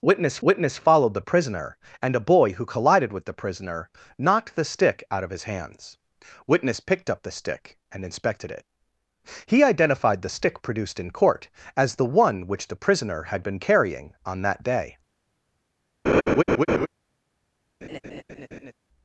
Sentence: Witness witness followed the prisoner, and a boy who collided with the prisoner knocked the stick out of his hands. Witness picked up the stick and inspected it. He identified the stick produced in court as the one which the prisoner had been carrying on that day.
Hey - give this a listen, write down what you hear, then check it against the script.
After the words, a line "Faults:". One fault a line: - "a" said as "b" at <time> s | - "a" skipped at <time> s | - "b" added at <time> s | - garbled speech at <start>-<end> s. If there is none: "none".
Witness witness followed the prisoner, and a boy who collided with the prisoner knocked the stick out of his hands. Witness picked up the stick and inspected it. He identified the stick produced in court as the one which the prisoner had been carrying on that day.
Faults:
none